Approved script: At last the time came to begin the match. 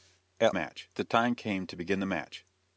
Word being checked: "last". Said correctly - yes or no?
no